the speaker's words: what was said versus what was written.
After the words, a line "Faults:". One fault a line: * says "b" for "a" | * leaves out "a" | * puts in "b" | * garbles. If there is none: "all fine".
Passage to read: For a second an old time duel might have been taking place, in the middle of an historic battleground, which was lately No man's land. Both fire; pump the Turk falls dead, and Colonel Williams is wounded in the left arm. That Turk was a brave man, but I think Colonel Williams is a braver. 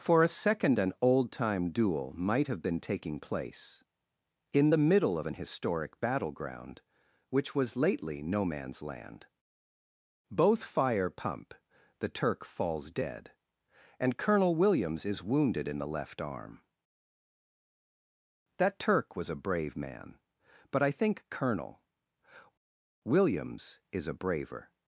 For a second an old time duel might have been taking place, in the middle of an historic battleground, which was lately No man's land. Both fire; pump the Turk falls dead, and Colonel Williams is wounded in the left arm. That Turk was a brave man, but I think Colonel Williams is a braver.
Faults:
all fine